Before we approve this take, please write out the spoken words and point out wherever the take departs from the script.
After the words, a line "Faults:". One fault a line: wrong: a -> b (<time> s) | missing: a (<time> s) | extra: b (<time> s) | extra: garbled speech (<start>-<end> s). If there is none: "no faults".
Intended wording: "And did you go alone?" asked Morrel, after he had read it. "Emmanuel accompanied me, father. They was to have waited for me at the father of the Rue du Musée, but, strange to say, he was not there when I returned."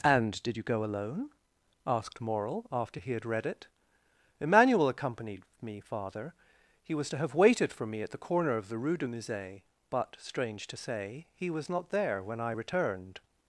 "And did you go alone?" asked Morrel, after he had read it. "Emmanuel accompanied me, father. He was to have waited for me at the corner of the Rue du Musée, but, strange to say, he was not there when I returned."
Faults:
wrong: They -> He (6.8 s)
wrong: father -> corner (8.2 s)